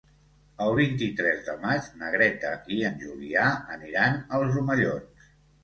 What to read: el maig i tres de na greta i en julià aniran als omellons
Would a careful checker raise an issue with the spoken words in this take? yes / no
yes